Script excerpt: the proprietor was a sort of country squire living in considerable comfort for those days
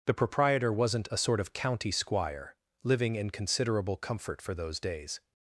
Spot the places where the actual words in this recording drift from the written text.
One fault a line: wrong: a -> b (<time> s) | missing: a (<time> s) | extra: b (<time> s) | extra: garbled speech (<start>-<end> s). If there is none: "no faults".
wrong: was -> wasn't (0.7 s)
wrong: country -> county (1.5 s)